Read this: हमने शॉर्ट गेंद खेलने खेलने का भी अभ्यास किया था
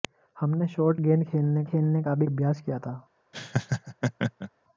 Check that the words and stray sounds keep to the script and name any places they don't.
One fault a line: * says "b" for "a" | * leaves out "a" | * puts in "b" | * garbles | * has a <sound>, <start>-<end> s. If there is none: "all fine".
* has a laugh, 3.3-4.5 s